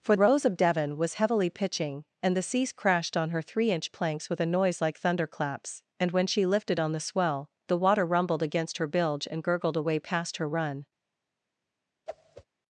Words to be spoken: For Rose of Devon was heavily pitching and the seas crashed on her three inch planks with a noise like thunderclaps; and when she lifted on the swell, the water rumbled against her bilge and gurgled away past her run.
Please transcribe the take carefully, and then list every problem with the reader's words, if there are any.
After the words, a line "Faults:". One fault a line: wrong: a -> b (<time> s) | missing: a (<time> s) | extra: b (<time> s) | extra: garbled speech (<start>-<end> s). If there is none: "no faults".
For Rose of Devon was heavily pitching and the seas crashed on her three inch planks with a noise like thunderclaps; and when she lifted on the swell, the water rumbled against her bilge and gurgled away past her run.
Faults:
no faults